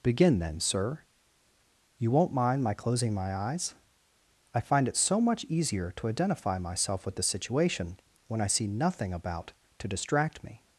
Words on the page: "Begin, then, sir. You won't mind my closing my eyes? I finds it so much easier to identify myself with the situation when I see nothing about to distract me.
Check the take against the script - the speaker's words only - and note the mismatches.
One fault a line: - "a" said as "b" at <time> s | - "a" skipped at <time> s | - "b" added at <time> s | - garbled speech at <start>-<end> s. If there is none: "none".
- "finds" said as "find" at 4.6 s